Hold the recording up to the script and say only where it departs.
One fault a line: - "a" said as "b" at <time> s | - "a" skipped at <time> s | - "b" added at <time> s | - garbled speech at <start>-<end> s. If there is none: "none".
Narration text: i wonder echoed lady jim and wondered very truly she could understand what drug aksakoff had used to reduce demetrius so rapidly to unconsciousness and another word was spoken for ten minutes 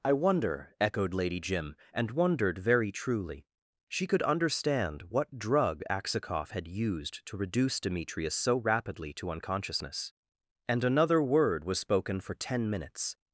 none